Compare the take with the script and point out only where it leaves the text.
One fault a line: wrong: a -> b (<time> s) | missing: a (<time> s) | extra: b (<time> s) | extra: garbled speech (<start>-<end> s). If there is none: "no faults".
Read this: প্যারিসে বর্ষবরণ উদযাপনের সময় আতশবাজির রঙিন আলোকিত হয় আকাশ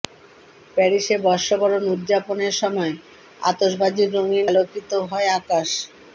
no faults